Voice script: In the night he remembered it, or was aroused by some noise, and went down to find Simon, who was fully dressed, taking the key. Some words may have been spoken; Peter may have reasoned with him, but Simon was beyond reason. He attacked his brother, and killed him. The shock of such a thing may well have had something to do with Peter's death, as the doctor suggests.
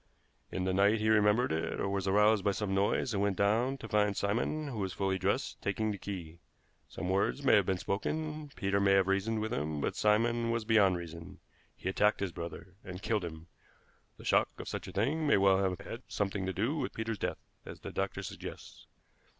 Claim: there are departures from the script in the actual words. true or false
false